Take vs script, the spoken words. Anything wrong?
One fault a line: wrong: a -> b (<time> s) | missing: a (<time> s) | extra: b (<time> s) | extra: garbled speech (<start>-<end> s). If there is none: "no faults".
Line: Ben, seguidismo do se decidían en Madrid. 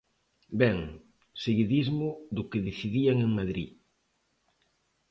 wrong: se -> que (2.5 s)